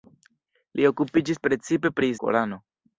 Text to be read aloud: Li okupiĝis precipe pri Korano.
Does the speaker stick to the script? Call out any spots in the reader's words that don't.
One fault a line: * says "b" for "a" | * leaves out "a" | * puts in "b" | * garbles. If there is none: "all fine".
all fine